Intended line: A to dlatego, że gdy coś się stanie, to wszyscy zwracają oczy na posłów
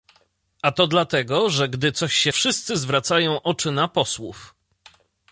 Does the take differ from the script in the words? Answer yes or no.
yes